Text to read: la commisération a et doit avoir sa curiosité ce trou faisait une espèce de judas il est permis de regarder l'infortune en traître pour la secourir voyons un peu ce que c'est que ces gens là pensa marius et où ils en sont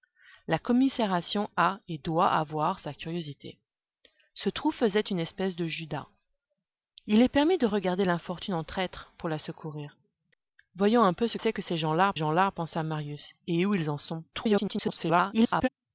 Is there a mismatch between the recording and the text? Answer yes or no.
yes